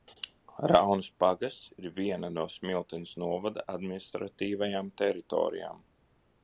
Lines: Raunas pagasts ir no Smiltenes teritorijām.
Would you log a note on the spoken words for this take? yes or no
yes